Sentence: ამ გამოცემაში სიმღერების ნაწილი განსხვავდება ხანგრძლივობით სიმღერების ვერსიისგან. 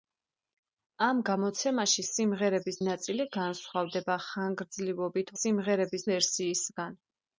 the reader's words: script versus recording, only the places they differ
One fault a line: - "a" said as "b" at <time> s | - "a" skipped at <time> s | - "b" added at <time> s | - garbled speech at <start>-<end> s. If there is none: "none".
none